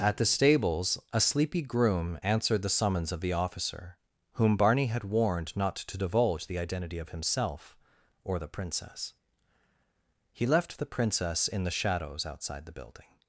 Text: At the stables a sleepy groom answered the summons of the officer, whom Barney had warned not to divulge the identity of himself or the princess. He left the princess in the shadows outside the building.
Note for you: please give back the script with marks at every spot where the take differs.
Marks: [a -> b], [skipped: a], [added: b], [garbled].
At the stables a sleepy groom answered the summons of the officer, whom Barney had warned not to divulge the identity of himself or the princess. He left the princess in the shadows outside the building.